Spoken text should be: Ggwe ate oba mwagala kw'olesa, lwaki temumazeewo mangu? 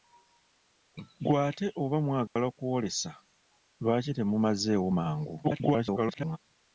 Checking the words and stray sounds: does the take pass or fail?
fail